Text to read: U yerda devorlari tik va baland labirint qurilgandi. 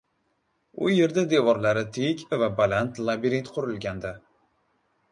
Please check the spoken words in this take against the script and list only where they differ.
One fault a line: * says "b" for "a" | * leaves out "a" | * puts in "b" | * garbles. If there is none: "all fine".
all fine